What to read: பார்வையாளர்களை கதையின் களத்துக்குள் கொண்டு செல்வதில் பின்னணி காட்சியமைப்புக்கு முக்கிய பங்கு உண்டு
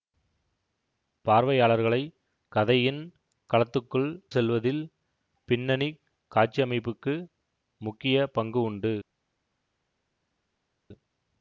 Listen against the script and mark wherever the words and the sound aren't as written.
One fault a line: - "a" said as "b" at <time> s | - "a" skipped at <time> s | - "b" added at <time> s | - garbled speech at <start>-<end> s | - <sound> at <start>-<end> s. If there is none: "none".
- "கொண்டு" skipped at 4.1 s